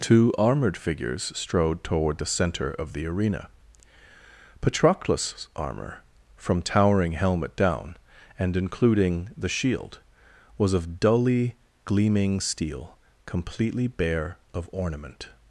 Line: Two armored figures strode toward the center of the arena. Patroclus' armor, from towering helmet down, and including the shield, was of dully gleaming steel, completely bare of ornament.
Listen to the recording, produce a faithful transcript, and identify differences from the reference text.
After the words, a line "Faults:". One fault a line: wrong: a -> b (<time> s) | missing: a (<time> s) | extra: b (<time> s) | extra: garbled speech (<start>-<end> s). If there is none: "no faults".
Two armored figures strode toward the center of the arena. Patroclus' armor, from towering helmet down, and including the shield, was of dully gleaming steel, completely bare of ornament.
Faults:
no faults